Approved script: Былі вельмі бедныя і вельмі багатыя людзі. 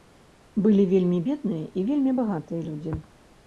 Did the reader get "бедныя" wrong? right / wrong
right